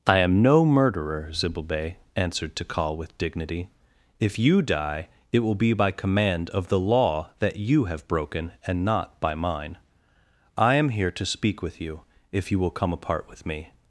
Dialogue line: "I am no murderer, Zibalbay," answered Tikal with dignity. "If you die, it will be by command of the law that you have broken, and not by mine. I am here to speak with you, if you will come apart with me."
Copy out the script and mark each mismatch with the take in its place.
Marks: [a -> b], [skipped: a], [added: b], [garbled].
"I am no murderer, Zibalbay," answered Tikal with dignity. "If you die, it will be by command of the law that you have broken, and not by mine. I am here to speak with you, if you will come apart with me."